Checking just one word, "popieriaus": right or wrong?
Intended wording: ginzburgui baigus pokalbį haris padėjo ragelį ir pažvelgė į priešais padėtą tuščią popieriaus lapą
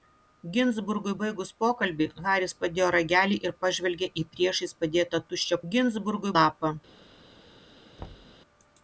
wrong